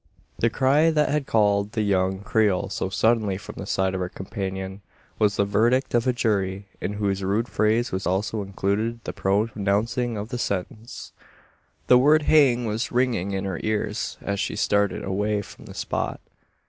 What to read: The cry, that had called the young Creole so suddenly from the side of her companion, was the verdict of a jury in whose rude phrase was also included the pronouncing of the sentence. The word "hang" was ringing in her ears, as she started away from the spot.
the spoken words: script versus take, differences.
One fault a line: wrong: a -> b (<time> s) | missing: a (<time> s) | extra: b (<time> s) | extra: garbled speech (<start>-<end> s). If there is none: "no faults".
no faults